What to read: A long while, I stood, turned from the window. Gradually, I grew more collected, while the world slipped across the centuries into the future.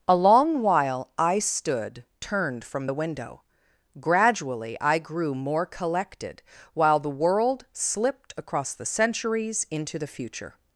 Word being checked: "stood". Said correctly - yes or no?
yes